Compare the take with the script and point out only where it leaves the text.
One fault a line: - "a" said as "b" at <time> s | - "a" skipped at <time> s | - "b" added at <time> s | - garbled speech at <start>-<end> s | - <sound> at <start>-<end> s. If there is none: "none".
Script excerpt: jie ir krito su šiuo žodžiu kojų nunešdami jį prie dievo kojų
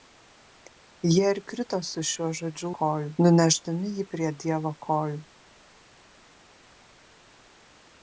none